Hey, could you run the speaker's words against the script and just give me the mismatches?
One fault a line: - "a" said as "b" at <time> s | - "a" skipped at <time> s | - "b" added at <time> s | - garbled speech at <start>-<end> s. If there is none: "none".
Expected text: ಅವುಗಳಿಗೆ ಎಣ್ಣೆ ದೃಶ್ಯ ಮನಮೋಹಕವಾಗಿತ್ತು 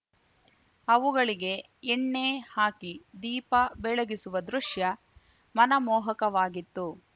- "ಹಾಕಿ ದೀಪ ಬೆಳಗಿಸುವ" added at 2.5 s